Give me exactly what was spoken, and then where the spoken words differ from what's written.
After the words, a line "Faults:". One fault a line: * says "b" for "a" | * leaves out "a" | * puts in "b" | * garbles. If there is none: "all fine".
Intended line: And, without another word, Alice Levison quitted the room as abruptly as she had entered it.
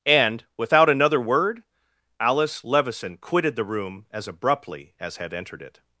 And, without another word, Alice Levison quitted the room as abruptly as had entered it.
Faults:
* leaves out "she"